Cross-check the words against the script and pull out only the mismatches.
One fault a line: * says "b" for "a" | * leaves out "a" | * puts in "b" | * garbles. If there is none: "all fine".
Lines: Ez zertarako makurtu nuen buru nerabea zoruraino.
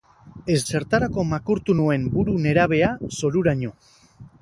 all fine